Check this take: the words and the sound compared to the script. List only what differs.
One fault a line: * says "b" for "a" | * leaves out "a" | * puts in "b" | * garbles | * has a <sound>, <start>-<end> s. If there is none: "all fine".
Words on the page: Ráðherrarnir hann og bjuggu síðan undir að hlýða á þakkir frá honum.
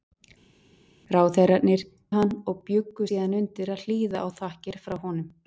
all fine